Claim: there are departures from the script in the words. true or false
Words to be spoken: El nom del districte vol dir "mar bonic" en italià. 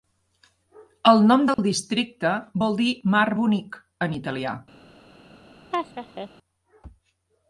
false